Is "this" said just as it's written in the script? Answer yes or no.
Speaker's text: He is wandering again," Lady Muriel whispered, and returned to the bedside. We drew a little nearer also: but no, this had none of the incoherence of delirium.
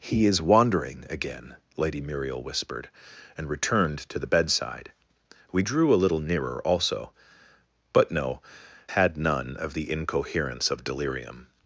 no